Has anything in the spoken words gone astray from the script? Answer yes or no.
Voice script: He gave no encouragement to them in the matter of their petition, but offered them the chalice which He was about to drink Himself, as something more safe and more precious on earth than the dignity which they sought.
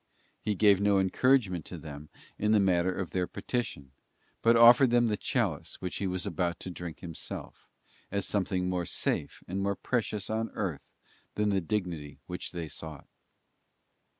no